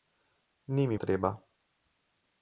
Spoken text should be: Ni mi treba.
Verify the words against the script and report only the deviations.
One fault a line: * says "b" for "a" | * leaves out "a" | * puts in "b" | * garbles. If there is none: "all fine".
all fine